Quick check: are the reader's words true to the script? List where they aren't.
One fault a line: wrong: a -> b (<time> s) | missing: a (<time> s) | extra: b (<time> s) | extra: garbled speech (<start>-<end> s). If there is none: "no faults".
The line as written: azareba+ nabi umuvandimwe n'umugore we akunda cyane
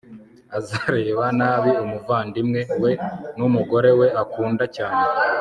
extra: we (2.8 s)